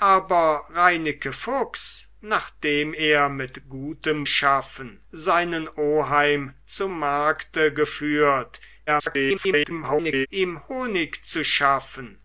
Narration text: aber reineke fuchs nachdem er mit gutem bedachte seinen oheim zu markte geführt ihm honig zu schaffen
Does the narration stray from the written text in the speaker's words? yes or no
yes